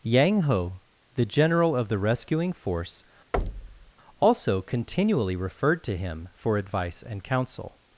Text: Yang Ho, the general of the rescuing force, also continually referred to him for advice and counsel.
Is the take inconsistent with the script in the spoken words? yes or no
no